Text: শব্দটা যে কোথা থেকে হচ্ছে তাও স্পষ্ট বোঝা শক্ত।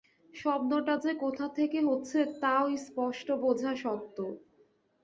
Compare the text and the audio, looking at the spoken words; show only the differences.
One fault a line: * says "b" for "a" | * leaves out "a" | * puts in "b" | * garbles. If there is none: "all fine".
all fine